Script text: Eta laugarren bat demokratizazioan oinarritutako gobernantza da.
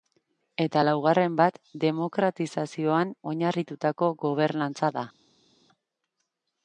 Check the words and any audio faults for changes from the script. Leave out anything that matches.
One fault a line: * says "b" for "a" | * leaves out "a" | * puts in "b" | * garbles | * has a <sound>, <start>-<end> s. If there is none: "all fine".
all fine